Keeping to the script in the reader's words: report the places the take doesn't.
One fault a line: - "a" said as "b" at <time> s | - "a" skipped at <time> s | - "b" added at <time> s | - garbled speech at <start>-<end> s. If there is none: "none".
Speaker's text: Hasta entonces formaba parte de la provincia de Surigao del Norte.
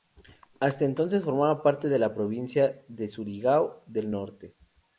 none